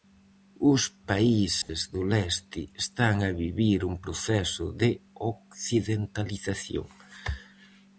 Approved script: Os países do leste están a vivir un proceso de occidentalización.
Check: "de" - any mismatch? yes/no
no